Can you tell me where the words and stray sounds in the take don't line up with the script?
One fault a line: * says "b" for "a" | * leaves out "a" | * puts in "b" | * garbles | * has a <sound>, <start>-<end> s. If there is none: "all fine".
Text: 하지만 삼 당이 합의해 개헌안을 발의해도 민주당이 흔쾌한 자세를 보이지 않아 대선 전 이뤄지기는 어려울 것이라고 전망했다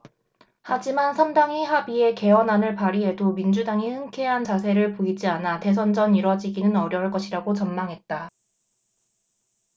all fine